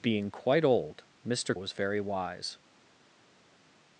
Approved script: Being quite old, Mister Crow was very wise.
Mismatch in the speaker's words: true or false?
true